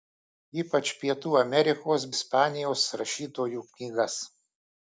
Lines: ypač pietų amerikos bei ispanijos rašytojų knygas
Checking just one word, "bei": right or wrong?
wrong